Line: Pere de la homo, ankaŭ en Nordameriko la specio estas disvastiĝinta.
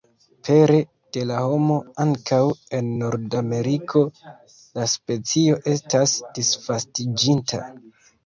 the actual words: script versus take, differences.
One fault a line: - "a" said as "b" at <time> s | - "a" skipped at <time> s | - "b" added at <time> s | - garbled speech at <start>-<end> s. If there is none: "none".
none